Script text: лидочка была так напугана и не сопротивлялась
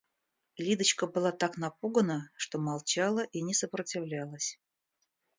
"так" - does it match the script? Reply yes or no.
yes